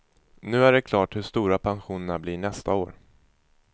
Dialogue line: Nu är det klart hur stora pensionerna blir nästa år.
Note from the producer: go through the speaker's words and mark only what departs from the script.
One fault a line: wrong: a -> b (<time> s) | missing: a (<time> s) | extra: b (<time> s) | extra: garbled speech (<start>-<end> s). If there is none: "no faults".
no faults